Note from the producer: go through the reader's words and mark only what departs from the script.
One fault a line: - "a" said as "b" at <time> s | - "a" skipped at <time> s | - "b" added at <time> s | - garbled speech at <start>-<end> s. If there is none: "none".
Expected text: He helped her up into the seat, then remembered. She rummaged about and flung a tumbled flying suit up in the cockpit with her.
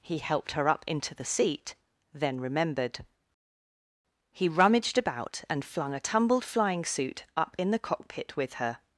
- "She" said as "He" at 4.3 s